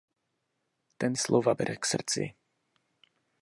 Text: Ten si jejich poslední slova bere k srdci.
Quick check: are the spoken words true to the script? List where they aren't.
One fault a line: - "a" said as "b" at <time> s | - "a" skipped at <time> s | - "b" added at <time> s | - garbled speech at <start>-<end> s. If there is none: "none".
- "si jejich poslední" skipped at 1.1 s